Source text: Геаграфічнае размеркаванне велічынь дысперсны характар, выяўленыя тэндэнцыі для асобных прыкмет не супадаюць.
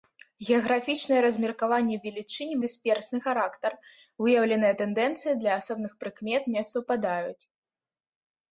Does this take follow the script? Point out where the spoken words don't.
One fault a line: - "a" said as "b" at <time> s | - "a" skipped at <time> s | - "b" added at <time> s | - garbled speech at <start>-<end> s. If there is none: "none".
none